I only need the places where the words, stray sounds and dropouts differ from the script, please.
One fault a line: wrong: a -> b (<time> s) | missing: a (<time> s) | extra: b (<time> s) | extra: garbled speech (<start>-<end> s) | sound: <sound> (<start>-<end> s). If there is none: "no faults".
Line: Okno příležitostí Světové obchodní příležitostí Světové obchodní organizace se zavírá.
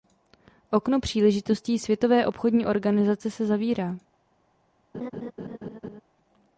missing: příležitostí Světové obchodní (2.6 s)
sound: laugh (4.9-6.0 s)